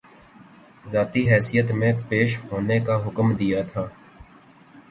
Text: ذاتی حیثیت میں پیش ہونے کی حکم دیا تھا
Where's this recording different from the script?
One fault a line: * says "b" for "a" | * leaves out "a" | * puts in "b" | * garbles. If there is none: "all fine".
* says "کا" for "کی"